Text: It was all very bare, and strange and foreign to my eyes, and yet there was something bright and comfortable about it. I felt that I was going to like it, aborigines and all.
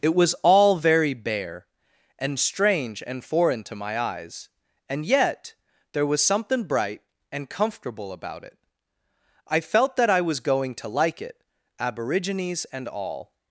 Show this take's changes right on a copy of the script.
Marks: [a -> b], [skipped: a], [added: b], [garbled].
It was all very bare, and strange and foreign to my eyes, and yet there was something bright and comfortable about it. I felt that I was going to like it, aborigines and all.